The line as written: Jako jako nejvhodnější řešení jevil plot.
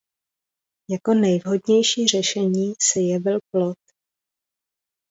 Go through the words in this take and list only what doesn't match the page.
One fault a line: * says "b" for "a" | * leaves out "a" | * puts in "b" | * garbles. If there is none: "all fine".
* leaves out "jako"
* puts in "se"